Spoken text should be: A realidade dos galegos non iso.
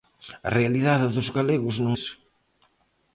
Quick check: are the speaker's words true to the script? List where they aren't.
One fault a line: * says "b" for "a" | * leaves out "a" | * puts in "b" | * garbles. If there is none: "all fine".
all fine